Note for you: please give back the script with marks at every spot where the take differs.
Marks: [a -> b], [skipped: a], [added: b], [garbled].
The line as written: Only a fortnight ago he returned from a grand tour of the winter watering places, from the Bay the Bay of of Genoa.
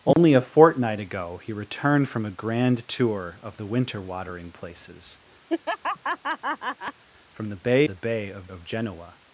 Only a fortnight ago he returned from a grand tour of the winter watering places, from the Bay the Bay of of Genoa.